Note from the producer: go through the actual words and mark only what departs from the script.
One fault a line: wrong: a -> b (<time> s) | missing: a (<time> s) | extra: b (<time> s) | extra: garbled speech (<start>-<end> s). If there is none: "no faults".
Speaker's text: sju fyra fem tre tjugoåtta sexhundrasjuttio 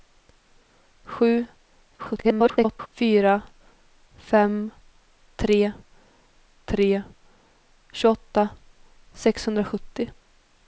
extra: garbled speech (2.0-2.9 s)
extra: tre (6.6 s)